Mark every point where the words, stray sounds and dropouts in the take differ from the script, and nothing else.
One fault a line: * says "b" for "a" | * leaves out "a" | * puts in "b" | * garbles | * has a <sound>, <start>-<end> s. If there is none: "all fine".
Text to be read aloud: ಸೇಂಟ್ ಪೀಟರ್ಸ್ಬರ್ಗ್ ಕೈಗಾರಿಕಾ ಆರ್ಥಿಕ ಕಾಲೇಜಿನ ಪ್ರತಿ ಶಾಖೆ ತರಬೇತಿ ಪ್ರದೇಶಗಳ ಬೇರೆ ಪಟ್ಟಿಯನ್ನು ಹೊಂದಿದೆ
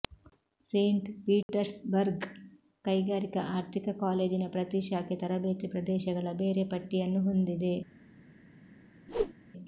* has a dropout, 1.4-1.5 s
* has a whoosh, 9.1-9.3 s